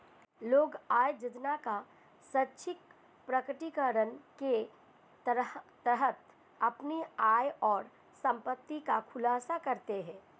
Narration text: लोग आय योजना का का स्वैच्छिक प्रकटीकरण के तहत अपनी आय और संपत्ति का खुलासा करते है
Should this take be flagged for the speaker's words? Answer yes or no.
yes